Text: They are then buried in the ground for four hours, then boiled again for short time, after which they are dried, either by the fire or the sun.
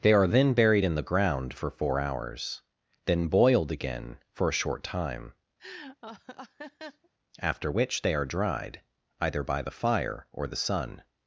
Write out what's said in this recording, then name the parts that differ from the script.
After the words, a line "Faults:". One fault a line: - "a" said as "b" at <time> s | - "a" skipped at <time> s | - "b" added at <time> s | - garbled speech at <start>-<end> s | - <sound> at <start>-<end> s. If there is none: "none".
They are then buried in the ground for four hours, then boiled again for a short time, after which they are dried, either by the fire or the sun.
Faults:
- "a" added at 4.5 s
- laugh at 5.6-7.1 s